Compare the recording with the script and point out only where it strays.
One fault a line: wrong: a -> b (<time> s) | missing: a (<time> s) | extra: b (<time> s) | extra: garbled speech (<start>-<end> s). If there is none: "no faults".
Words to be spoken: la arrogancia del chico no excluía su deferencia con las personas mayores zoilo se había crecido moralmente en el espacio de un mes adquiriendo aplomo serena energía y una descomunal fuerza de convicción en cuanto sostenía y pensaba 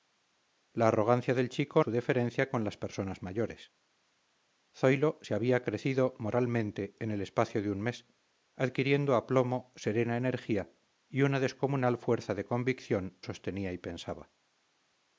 missing: no excluía (1.8 s)
missing: en cuanto (13.2 s)